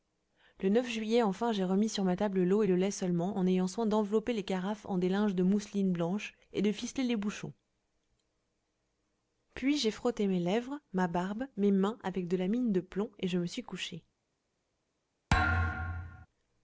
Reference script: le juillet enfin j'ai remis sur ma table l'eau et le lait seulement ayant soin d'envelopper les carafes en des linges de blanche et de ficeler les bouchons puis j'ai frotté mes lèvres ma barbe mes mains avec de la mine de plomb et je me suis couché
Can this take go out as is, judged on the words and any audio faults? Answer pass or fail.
fail